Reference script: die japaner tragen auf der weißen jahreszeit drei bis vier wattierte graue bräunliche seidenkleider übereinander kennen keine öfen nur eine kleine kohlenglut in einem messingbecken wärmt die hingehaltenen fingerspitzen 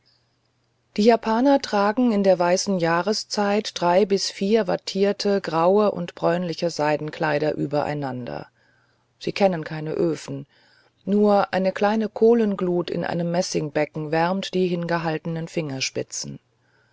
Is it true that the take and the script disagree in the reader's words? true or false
true